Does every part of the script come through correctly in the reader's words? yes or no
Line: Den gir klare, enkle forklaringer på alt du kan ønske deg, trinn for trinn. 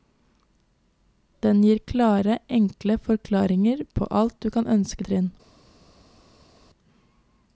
no